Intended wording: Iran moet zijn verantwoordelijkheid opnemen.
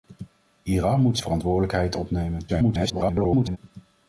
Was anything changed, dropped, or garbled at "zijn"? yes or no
yes